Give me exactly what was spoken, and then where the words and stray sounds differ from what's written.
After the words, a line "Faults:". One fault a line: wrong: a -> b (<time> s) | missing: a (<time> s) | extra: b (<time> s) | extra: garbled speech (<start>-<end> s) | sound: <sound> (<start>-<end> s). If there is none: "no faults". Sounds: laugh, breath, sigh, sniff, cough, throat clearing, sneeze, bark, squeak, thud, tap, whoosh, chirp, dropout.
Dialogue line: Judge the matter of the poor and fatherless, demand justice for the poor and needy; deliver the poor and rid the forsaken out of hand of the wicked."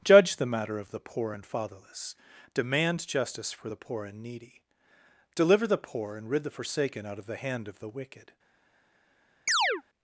Judge the matter of the poor and fatherless, demand justice for the poor and needy; deliver the poor and rid the forsaken out of the hand of the wicked."
Faults:
extra: the (7.2 s)
sound: chirp (9.5-9.8 s)